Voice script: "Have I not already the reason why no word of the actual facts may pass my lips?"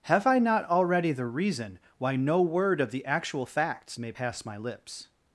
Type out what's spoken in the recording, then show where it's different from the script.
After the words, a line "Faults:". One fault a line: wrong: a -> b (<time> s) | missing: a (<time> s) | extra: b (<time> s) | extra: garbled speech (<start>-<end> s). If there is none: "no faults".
"Have I not already the reason why no word of the actual facts may pass my lips?"
Faults:
no faults